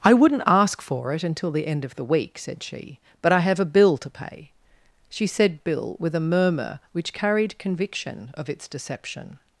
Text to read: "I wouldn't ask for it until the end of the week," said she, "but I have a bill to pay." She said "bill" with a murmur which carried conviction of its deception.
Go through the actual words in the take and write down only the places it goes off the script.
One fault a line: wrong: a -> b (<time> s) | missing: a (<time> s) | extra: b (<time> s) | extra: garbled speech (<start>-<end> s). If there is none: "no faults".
no faults